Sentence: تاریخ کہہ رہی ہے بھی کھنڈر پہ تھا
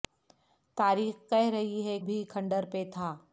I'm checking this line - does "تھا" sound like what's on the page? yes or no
yes